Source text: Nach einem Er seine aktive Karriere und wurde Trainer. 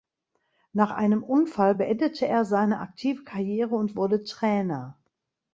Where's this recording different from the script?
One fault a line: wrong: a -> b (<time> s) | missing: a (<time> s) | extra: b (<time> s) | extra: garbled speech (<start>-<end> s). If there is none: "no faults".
extra: Unfall beendete (1.2 s)